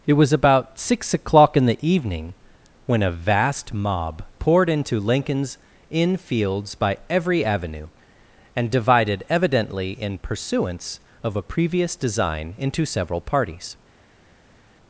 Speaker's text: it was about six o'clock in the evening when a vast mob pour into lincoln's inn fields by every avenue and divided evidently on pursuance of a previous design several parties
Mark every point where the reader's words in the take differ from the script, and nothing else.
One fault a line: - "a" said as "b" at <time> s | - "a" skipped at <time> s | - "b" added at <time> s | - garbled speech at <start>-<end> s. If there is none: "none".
- "pour" said as "poured" at 4.4 s
- "on" said as "in" at 9.9 s
- "into" added at 12.6 s